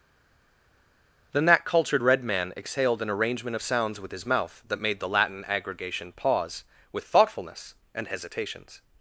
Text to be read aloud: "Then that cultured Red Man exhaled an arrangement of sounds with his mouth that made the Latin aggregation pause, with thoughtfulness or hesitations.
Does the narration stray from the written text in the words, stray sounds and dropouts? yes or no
yes